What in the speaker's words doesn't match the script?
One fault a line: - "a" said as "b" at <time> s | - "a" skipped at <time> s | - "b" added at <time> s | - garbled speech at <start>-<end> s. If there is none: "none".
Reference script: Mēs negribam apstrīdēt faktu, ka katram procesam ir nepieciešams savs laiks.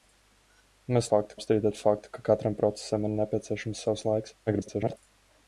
- "negribam" said as "faktu" at 1.1 s
- garbled speech at 4.5-5.0 s